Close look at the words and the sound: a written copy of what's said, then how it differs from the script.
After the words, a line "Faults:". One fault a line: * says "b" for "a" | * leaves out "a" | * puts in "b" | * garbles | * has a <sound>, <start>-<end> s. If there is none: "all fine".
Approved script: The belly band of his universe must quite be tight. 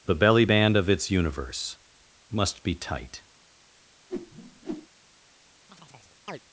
The belly band of its universe must be tight.
Faults:
* says "its" for "his"
* leaves out "quite"
* has a whoosh, 4.1-4.9 s
* has a chirp, 5.7-6.4 s